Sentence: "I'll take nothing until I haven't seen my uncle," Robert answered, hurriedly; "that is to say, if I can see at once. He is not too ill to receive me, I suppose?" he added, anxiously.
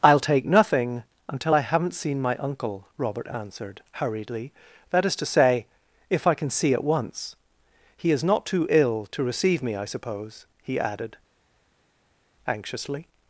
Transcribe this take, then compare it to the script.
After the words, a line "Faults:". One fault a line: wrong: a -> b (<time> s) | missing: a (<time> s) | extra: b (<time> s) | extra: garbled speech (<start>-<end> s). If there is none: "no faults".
"I'll take nothing until I haven't seen my uncle," Robert answered, hurriedly; "that is to say, if I can see at once. He is not too ill to receive me, I suppose?" he added, anxiously.
Faults:
no faults